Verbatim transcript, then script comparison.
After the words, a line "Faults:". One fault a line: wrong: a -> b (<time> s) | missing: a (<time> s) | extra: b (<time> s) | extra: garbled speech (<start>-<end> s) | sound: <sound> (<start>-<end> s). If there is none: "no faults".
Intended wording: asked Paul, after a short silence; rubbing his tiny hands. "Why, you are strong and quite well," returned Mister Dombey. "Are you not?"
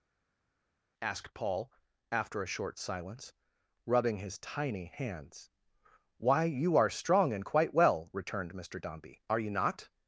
asked Paul, after a short silence; rubbing his tiny hands. "Why, you are strong and quite well," returned Mister Dombey. "Are you not?"
Faults:
no faults